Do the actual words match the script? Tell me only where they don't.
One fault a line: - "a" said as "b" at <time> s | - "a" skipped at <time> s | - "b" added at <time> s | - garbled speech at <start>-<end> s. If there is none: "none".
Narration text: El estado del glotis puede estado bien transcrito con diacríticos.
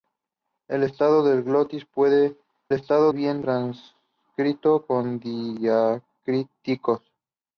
none